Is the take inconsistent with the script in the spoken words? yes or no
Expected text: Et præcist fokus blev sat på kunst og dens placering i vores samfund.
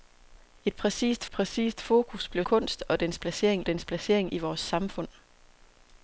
yes